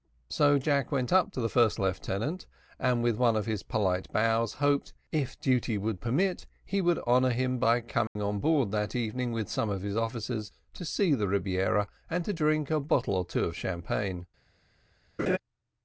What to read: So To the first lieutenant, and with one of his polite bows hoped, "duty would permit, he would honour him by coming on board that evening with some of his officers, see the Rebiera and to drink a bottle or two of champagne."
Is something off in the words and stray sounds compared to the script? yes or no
yes